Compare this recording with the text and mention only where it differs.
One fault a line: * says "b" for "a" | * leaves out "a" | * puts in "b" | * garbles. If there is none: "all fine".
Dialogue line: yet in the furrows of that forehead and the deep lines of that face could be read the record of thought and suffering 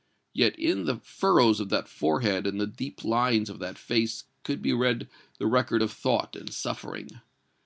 all fine